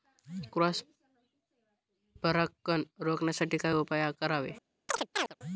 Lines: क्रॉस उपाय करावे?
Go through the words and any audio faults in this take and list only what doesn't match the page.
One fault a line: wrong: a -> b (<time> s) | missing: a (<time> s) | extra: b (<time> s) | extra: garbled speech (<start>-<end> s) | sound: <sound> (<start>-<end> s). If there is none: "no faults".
extra: परागकण रोखण्यासाठी काय (2.2 s)
sound: chirp (4.9-5.3 s)